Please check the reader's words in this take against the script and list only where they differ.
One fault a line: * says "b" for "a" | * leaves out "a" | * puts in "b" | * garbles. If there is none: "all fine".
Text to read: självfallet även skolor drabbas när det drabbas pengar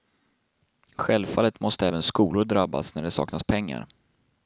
* puts in "måste"
* says "saknas" for "drabbas"